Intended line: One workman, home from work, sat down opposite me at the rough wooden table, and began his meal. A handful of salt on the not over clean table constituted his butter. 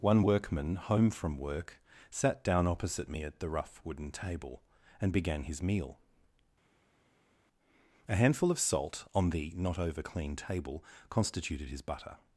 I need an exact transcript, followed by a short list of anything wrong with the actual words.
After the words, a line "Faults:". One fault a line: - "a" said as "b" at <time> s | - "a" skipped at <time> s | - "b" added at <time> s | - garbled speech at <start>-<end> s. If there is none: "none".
One workman, home from work, sat down opposite me at the rough wooden table, and began his meal. A handful of salt on the not over clean table constituted his butter.
Faults:
none